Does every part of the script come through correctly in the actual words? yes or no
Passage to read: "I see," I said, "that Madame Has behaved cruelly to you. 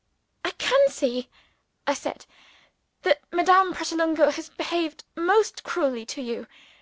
no